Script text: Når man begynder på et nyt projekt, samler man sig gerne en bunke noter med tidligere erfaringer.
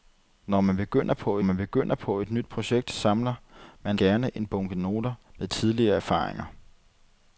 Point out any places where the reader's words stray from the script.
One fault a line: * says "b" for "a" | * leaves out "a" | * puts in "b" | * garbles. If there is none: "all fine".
* puts in "man begynder på"
* leaves out "sig"